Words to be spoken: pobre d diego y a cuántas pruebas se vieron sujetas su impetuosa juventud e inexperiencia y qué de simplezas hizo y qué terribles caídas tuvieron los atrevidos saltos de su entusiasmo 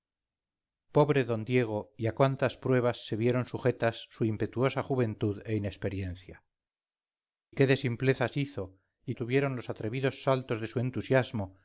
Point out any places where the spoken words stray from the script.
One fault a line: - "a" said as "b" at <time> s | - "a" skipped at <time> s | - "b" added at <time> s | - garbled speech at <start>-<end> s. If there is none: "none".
- "y" skipped at 6.4 s
- "qué terribles caídas" skipped at 9.1 s